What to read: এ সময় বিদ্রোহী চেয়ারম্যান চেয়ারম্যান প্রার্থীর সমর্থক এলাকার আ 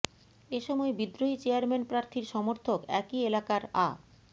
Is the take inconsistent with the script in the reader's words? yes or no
yes